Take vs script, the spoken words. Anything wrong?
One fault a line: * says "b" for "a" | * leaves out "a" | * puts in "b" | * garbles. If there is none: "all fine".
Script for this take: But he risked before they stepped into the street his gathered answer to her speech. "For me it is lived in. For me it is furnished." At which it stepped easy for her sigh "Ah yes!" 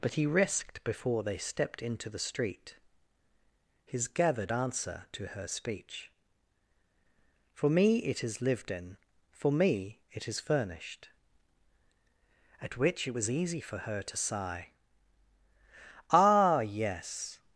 * says "was" for "stepped"
* puts in "to"